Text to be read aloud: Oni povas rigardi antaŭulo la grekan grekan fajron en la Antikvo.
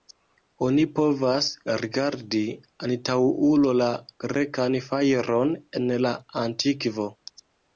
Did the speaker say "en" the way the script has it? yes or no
yes